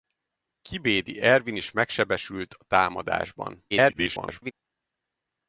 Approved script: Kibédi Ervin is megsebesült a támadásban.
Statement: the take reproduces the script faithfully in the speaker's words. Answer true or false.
false